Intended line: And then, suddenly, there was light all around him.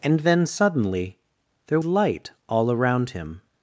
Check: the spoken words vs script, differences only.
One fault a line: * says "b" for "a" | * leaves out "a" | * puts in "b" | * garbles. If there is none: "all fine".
* leaves out "was"